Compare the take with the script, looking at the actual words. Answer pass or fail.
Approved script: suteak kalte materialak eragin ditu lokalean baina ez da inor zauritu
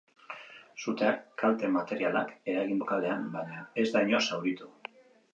fail